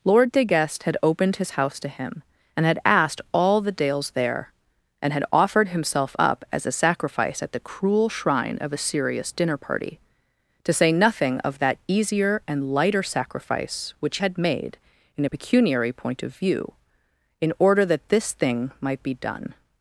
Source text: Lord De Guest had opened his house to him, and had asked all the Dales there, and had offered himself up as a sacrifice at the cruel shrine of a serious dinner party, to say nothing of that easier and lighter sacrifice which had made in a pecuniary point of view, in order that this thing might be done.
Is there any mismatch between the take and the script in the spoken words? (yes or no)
no